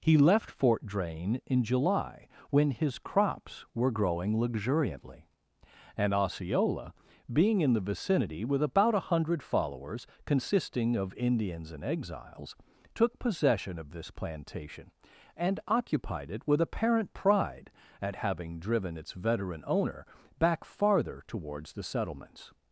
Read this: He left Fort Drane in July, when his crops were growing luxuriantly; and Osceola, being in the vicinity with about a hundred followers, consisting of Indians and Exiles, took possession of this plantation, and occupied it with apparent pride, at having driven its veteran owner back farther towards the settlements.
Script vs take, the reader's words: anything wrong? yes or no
no